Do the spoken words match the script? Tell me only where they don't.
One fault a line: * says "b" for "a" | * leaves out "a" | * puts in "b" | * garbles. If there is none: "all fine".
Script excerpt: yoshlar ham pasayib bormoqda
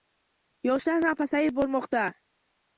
all fine